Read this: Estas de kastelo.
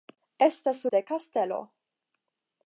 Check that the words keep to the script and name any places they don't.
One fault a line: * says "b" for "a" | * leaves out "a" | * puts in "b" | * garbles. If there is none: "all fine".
all fine